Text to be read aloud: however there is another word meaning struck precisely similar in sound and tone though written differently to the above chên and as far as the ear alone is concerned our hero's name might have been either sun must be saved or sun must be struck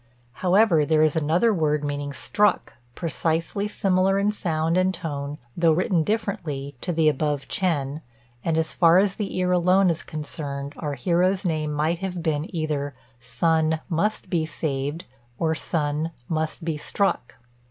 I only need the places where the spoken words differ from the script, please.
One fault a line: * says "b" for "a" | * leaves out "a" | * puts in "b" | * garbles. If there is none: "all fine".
all fine